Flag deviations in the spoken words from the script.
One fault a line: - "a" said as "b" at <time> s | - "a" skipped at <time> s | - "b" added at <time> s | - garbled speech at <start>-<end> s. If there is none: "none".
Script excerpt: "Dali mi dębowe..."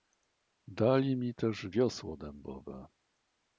- "też wiosło" added at 1.4 s